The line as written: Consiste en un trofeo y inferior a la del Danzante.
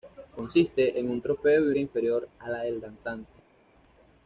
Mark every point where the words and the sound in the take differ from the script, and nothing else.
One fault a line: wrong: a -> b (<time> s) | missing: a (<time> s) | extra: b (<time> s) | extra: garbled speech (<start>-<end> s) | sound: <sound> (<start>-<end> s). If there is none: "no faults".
no faults